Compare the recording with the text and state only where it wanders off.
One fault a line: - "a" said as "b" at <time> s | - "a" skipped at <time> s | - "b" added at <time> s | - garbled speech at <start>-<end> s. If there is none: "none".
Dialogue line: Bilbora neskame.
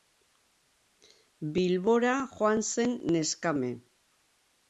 - "joan zen" added at 2.4 s